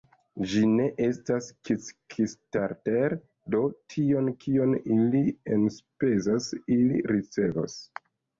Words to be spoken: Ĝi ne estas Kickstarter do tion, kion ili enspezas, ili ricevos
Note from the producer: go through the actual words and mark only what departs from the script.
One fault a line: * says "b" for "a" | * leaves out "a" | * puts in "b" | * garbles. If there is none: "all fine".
all fine